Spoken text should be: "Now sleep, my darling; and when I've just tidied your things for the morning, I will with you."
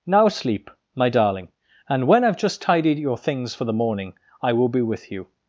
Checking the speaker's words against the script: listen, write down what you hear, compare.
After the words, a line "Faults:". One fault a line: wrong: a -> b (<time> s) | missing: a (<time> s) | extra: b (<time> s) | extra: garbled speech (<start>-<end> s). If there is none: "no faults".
"Now sleep, my darling; and when I've just tidied your things for the morning, I will be with you."
Faults:
extra: be (4.7 s)